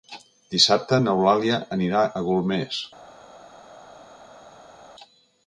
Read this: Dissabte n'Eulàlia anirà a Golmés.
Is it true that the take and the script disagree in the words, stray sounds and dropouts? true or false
false